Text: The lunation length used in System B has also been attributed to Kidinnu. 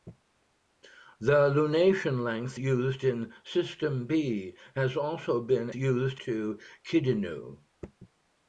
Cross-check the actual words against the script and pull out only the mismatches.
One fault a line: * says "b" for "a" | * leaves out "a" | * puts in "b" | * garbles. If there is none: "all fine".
* says "used" for "attributed"